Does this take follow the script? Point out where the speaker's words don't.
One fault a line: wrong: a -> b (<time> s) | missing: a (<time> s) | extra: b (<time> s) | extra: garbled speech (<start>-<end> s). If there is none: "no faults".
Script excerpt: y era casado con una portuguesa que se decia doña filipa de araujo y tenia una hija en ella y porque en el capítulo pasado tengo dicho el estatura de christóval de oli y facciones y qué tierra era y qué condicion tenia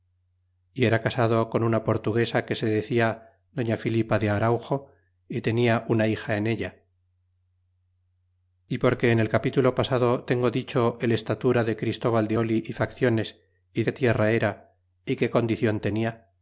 no faults